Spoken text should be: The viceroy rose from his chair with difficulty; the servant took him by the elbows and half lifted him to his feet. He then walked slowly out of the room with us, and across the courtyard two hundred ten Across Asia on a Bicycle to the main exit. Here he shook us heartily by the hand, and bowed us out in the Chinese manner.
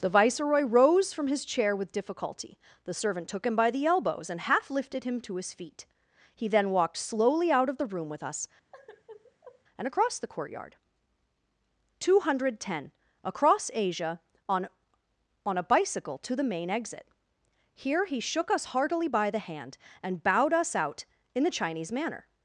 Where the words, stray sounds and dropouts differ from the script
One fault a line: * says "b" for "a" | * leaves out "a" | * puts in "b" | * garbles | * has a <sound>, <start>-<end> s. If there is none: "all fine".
* has a sigh, 8.7-9.6 s
* puts in "on"